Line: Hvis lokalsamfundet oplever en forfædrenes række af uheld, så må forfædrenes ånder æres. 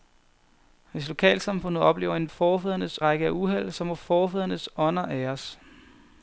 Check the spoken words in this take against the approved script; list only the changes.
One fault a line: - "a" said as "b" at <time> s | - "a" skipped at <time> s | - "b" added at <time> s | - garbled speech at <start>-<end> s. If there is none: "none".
none